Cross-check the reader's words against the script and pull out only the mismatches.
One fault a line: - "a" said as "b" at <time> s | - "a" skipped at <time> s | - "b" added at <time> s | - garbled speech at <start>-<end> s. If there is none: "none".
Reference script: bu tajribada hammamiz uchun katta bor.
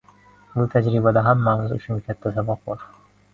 - "saboq" added at 2.4 s